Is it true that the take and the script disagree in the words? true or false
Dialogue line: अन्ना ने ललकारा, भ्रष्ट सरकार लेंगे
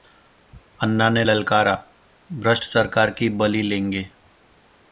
true